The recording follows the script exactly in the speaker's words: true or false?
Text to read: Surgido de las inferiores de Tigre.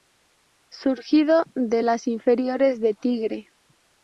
true